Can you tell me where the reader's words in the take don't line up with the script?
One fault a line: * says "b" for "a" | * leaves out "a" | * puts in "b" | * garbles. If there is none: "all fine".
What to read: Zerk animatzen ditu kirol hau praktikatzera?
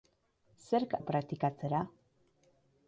* leaves out "animatzen ditu kirol"